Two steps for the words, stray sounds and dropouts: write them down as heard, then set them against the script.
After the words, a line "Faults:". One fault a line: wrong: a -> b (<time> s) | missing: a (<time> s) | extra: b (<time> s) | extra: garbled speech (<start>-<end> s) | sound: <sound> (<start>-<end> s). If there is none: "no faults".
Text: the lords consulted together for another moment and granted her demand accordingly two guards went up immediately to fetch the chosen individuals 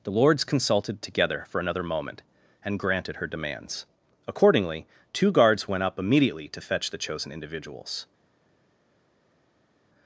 the lords consulted together for another moment and granted her demands accordingly two guards went up immediately to fetch the chosen individuals
Faults:
wrong: demand -> demands (3.3 s)